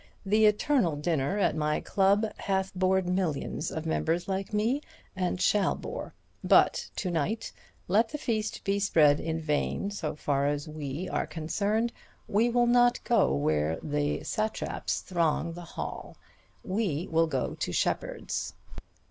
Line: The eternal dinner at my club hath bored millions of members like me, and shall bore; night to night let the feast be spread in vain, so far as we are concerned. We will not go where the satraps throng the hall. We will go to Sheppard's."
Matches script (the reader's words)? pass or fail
fail